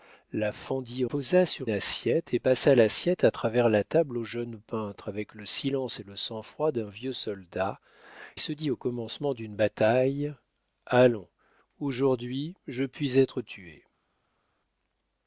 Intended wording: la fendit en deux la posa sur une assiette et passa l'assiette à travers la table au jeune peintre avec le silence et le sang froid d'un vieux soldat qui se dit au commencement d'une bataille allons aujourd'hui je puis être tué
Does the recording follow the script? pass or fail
fail